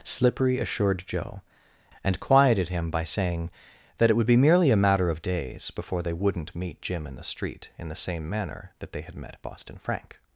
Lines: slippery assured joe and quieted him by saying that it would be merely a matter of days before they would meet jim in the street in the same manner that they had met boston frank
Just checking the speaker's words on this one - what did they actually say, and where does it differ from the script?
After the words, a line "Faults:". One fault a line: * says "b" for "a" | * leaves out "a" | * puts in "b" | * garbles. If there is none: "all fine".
slippery assured joe and quieted him by saying that it would be merely a matter of days before they wouldn't meet jim in the street in the same manner that they had met boston frank
Faults:
* says "wouldn't" for "would"